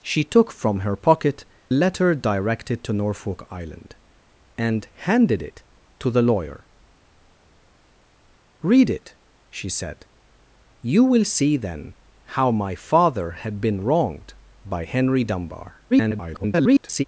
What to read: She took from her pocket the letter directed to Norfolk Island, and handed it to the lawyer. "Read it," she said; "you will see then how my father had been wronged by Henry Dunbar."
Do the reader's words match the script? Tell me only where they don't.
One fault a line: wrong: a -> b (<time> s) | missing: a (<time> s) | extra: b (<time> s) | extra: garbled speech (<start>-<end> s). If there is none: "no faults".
missing: the (1.5 s)
extra: garbled speech (15.9-17.0 s)